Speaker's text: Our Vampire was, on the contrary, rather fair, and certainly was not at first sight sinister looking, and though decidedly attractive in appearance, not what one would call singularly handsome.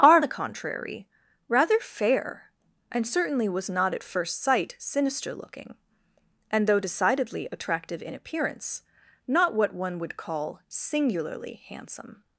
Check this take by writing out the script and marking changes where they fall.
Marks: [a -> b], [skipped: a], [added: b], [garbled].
Our [skipped: Vampire was, on] the contrary, rather fair, and certainly was not at first sight sinister looking, and though decidedly attractive in appearance, not what one would call singularly handsome.